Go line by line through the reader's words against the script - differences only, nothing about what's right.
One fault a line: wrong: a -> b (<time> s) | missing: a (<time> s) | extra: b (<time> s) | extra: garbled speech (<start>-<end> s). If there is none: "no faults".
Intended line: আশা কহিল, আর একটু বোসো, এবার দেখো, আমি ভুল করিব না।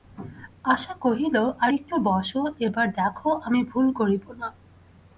no faults